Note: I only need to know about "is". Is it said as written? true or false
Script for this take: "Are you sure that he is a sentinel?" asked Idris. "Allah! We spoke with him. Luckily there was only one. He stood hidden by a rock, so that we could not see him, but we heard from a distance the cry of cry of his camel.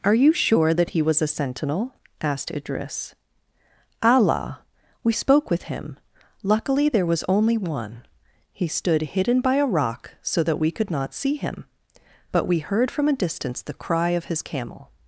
false